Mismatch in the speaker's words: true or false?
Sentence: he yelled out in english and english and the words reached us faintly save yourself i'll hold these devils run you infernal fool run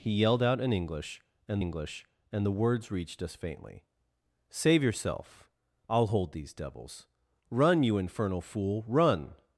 false